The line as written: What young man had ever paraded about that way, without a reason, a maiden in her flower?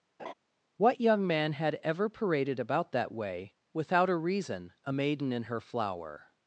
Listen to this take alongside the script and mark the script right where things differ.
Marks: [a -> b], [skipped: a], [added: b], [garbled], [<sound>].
[laugh] What young man had ever paraded about that way, without a reason, a maiden in her flower?